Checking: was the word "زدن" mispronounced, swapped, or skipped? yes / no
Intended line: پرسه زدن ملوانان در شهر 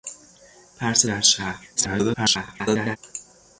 yes